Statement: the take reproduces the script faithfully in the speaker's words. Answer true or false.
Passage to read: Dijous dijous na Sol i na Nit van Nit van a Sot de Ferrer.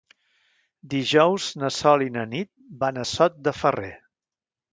false